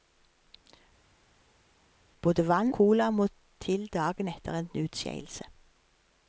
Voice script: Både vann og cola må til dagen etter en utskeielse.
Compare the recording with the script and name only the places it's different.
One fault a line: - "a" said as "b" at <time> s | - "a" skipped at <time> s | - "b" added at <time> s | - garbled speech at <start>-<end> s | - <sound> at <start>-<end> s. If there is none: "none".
- "og" skipped at 2.7 s